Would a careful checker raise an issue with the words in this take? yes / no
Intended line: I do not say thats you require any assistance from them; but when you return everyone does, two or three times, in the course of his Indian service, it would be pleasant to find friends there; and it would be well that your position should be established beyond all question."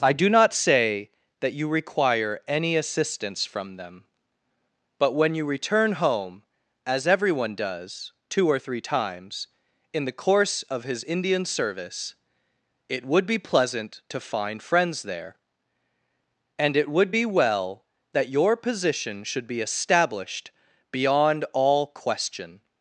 yes